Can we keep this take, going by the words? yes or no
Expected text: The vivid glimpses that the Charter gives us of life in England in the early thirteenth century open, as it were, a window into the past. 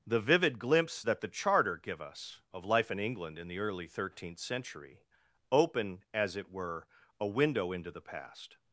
no